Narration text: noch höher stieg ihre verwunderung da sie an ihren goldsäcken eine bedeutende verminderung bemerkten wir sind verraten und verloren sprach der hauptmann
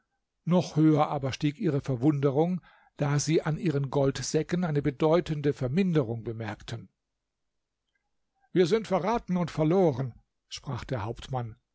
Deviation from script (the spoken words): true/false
true